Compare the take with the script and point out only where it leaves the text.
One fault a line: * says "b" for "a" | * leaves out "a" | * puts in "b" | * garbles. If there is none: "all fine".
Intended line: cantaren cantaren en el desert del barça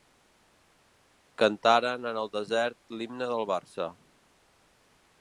* leaves out "cantaren"
* puts in "l'himne"